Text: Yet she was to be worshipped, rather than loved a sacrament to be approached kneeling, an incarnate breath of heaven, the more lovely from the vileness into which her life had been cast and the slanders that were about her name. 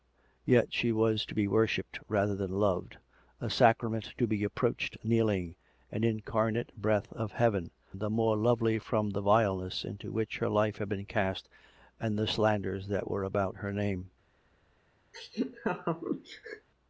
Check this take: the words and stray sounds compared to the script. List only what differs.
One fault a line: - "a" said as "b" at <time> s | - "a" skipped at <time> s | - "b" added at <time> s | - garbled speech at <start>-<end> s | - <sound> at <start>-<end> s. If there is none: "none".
- laugh at 15.1-16.7 s